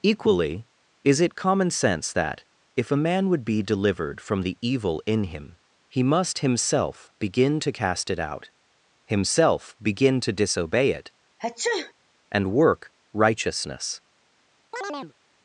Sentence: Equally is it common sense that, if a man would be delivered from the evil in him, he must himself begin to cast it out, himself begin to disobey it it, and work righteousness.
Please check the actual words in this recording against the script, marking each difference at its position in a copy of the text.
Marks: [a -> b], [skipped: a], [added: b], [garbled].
Equally is it common sense that, if a man would be delivered from the evil in him, he must himself begin to cast it out, himself begin to disobey it [skipped: it,] and work righteousness.